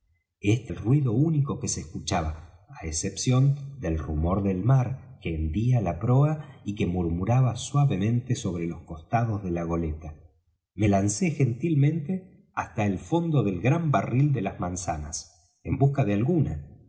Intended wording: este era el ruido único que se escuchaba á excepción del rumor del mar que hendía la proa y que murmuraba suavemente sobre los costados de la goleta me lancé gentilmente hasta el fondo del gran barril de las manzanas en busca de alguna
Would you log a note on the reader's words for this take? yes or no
yes